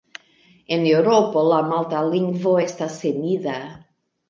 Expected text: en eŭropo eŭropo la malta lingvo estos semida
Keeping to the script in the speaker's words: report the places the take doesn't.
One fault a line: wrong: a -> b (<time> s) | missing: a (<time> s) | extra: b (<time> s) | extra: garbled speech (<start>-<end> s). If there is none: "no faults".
missing: eŭropo (1.4 s)
wrong: estos -> estas (2.6 s)